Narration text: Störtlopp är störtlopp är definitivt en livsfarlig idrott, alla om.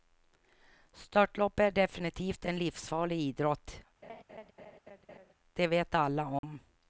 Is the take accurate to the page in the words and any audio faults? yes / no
no